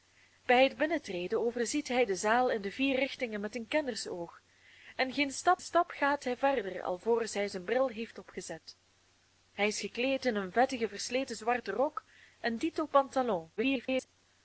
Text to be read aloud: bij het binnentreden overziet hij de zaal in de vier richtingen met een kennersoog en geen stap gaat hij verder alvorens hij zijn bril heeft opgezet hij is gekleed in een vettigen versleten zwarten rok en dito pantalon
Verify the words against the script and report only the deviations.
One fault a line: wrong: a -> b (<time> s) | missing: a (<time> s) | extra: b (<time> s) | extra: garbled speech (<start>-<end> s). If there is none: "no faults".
extra: stap (5.6 s)
extra: garbled speech (13.6-14.1 s)